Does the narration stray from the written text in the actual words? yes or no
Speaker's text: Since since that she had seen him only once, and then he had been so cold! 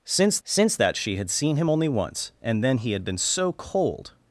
no